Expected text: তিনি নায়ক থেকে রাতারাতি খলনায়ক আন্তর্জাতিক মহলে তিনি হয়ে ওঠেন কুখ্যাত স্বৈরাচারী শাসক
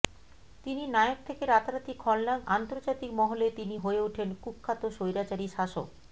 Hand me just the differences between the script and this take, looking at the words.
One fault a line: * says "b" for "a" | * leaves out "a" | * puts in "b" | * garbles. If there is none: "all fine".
all fine